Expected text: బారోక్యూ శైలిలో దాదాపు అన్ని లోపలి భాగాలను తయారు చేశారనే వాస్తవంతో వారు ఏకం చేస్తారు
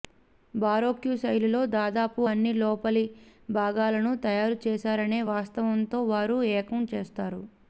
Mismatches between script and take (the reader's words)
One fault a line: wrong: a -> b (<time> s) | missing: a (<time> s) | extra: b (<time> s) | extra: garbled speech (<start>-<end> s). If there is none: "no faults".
no faults